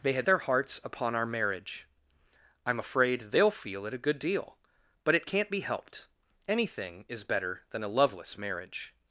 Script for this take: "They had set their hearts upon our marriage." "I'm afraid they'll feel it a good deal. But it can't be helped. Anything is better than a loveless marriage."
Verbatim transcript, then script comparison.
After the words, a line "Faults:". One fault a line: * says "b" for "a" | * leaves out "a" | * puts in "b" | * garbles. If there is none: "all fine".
"They had their hearts upon our marriage." "I'm afraid they'll feel it a good deal. But it can't be helped. Anything is better than a loveless marriage."
Faults:
* leaves out "set"